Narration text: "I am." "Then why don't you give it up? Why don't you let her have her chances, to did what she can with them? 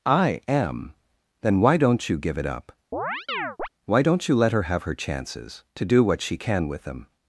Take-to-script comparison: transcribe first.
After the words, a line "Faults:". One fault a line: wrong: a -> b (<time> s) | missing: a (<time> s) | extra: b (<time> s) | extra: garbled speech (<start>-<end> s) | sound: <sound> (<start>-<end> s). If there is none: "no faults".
"I am." "Then why don't you give it up? Why don't you let her have her chances, to do what she can with them?
Faults:
sound: chirp (2.9-3.7 s)
wrong: did -> do (5.8 s)